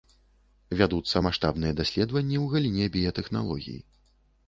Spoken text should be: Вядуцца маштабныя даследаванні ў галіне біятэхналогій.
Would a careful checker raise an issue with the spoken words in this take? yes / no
no